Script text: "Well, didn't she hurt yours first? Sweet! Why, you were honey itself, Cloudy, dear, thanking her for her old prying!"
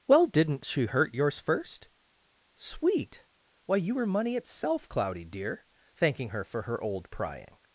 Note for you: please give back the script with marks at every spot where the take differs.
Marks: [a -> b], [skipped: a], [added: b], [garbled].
"Well, didn't she hurt yours first? Sweet! Why, you were [honey -> money] itself, Cloudy, dear, thanking her for her old prying!"